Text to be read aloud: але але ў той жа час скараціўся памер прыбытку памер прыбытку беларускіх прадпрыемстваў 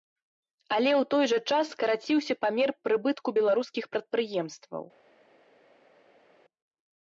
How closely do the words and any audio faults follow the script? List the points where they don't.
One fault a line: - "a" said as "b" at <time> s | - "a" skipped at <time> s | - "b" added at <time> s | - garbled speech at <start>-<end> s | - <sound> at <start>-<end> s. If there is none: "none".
- "але" skipped at 0.9 s
- "памер прыбытку" skipped at 3.3 s